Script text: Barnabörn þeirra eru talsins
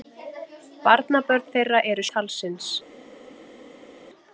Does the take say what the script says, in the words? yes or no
yes